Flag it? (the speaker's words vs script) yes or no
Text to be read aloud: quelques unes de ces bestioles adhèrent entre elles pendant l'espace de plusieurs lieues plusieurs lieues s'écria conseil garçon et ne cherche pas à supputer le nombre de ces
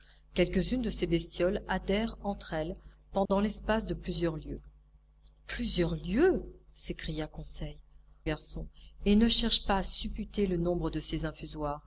no